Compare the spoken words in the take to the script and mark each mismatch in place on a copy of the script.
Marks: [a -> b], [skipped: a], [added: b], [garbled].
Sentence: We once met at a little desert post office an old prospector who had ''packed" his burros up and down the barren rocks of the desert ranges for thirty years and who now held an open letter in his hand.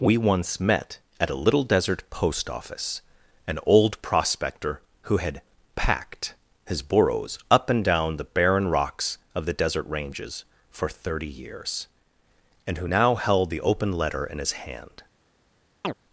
We once met at a little desert post office an old prospector who had ''packed" his burros up and down the barren rocks of the desert ranges for thirty years and who now held [an -> the] open letter in his hand.